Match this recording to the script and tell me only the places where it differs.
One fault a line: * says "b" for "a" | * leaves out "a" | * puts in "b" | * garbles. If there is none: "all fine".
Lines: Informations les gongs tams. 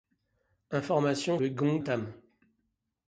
all fine